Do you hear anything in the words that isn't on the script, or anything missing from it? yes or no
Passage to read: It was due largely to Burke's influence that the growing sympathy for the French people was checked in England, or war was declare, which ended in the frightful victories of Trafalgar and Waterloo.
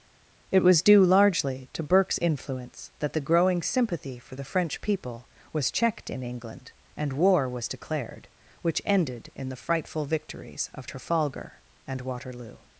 yes